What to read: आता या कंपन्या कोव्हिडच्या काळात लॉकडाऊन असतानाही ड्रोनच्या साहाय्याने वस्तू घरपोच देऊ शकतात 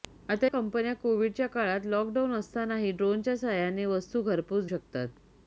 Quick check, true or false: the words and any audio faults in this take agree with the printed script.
false